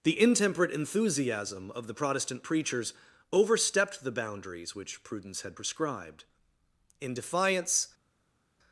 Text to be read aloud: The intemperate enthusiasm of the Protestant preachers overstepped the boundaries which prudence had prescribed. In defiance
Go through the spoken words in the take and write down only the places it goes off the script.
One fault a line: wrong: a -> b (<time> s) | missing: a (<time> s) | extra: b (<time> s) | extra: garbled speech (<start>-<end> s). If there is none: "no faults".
no faults